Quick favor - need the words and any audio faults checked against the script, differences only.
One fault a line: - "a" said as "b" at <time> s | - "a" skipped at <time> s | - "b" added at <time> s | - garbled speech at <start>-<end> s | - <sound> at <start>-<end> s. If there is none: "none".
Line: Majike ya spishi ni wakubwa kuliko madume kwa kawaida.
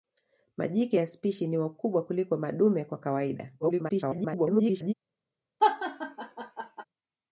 - garbled speech at 3.6-4.9 s
- laugh at 5.6-6.8 s